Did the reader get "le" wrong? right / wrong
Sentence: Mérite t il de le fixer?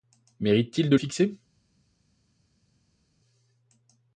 wrong